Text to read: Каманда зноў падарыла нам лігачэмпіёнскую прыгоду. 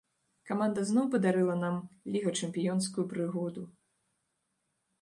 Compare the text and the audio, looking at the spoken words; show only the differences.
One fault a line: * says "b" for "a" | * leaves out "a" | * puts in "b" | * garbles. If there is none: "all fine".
all fine